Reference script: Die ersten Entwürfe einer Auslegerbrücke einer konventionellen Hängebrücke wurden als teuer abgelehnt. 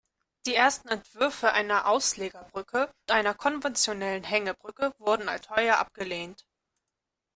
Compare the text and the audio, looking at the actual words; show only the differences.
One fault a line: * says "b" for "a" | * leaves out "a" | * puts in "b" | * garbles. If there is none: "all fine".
all fine